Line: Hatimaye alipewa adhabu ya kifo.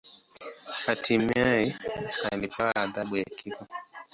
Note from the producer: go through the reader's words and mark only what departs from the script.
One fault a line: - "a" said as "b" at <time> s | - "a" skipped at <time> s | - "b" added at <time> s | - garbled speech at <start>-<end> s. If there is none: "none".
none